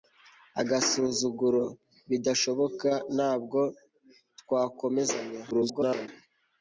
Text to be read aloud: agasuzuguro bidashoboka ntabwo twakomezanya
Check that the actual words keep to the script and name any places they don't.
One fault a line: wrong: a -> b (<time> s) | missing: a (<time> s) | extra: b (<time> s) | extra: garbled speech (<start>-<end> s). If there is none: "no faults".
extra: garbled speech (5.5-6.1 s)